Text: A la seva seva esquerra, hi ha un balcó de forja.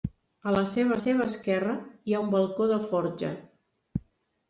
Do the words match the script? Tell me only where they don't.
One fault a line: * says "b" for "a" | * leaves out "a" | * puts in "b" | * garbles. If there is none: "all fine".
all fine